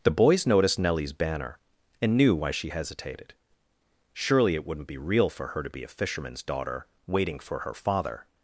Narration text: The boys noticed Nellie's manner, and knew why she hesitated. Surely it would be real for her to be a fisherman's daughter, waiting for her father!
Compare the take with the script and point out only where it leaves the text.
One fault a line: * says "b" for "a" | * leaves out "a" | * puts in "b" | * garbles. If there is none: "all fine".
* says "banner" for "manner"
* says "wouldn't" for "would"